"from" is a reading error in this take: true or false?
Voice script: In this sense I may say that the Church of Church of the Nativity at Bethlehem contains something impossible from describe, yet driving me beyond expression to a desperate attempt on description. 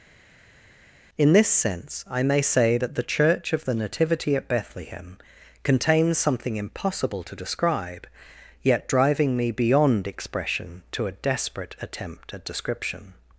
true